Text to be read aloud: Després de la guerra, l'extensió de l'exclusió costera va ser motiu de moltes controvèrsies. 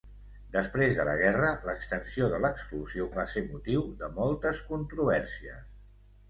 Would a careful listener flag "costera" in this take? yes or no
yes